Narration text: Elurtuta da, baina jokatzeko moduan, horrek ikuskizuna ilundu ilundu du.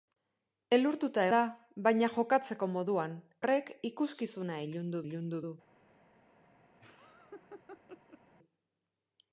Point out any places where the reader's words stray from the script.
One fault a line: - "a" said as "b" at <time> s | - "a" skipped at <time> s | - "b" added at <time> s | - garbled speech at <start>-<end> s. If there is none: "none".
none